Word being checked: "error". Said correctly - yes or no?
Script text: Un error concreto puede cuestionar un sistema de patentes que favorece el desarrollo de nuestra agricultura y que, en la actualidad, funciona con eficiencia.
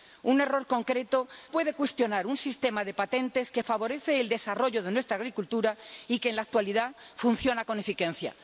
yes